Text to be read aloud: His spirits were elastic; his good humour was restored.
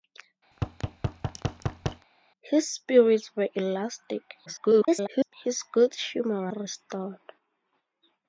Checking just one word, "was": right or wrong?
wrong